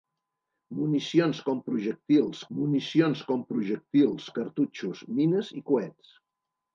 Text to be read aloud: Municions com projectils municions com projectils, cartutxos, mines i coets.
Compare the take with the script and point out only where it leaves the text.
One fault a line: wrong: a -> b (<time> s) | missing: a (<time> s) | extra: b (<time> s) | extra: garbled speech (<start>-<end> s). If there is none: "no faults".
no faults